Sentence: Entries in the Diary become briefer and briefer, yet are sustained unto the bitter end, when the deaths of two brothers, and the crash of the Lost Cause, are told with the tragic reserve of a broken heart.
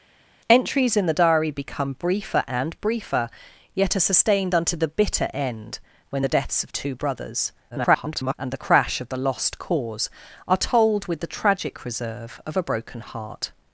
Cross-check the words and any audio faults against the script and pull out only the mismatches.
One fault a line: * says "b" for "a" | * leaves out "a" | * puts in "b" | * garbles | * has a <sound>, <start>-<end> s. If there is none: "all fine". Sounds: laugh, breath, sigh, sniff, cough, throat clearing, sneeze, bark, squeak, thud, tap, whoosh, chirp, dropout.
* garbles